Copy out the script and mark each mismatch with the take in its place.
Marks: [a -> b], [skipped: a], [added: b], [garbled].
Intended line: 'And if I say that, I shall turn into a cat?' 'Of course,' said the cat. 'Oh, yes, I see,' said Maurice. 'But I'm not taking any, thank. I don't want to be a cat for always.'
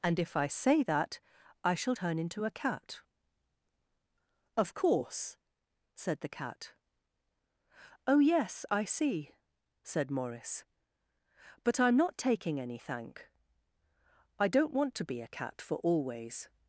'And if I say that, I shall turn into a cat?' 'Of course,' said the cat. 'Oh, yes, I see,' said Maurice. 'But I'm not taking any, thank. I don't want to be a cat for always.'